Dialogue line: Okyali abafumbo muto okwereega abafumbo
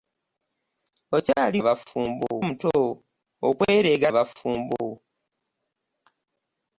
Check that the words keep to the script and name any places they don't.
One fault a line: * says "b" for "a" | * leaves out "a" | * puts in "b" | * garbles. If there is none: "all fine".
all fine